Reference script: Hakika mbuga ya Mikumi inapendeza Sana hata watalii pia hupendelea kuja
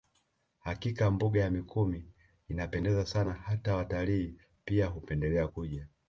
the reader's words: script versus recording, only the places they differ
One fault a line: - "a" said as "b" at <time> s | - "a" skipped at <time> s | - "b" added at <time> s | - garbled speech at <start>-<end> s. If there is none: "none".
none